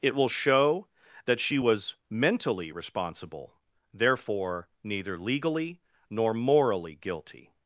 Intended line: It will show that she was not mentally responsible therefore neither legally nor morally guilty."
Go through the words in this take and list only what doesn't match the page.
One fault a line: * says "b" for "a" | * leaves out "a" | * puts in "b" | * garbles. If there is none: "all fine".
* leaves out "not"